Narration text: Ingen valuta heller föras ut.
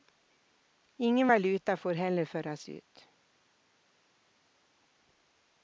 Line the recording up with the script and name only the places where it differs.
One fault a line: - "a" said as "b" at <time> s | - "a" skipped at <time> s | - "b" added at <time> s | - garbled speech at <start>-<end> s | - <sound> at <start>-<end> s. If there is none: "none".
- "får" added at 1.8 s